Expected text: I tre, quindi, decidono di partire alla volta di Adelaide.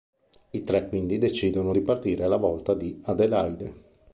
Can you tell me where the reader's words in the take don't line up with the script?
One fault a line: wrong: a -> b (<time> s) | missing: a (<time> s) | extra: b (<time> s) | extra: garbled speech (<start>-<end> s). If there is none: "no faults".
no faults